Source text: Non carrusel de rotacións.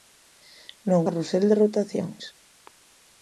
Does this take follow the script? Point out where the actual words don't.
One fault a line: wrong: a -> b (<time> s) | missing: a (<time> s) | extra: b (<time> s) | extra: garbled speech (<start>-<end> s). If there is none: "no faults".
no faults